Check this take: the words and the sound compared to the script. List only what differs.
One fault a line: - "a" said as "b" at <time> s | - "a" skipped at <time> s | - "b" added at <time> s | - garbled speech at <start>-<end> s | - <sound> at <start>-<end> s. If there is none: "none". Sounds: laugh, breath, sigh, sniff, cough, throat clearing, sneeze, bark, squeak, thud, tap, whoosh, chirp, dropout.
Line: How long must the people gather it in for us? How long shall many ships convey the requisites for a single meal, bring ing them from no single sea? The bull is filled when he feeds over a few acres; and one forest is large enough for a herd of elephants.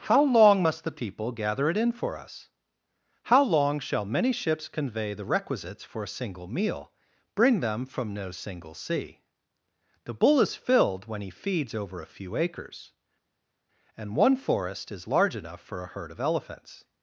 - "ing" skipped at 7.6 s